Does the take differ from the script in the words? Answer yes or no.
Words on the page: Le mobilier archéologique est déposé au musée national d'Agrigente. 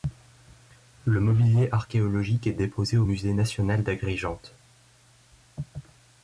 no